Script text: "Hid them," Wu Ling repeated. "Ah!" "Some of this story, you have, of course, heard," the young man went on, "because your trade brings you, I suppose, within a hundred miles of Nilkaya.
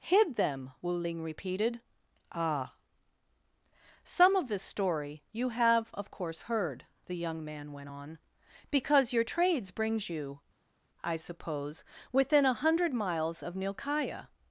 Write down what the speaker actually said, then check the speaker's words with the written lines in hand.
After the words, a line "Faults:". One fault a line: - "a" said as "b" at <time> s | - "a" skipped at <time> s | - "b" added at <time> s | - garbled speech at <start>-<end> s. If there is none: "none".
"Hid them," Wu Ling repeated. "Ah!" "Some of this story, you have, of course, heard," the young man went on, "because your trades brings you, I suppose, within a hundred miles of Nilkaya.
Faults:
- "trade" said as "trades" at 9.2 s